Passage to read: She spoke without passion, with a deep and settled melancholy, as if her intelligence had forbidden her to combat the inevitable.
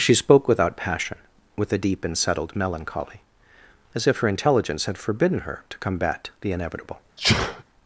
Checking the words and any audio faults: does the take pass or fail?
fail